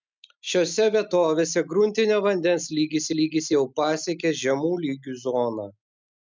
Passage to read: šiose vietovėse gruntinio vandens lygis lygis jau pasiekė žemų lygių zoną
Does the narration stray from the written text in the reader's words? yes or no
no